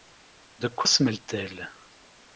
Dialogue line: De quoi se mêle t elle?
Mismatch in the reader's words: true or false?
false